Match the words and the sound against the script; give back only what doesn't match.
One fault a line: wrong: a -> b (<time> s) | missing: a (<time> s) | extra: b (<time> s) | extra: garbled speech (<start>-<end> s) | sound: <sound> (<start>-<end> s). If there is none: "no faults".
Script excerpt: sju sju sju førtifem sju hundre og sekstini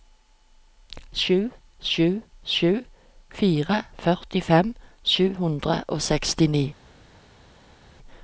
extra: fire (3.4 s)